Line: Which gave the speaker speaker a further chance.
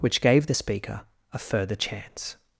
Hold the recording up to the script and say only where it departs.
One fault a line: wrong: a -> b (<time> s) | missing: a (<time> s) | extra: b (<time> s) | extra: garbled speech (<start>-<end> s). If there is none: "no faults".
missing: speaker (1.1 s)